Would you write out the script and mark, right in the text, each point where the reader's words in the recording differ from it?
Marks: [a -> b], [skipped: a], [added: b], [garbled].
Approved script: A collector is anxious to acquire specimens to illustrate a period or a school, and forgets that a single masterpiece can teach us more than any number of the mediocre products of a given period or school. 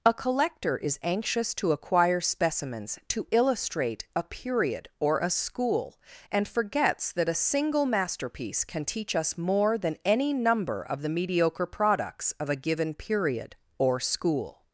A collector is anxious to acquire specimens to illustrate a period or a school, and forgets that a single masterpiece can teach us more than any number of the mediocre products of a given period or school.